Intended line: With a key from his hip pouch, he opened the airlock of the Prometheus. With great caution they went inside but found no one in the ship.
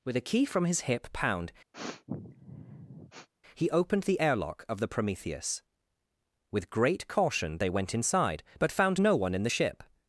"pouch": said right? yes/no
no